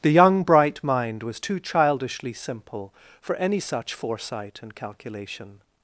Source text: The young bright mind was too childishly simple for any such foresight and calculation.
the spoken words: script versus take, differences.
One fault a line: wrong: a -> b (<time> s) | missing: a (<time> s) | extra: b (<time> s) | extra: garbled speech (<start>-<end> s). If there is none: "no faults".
no faults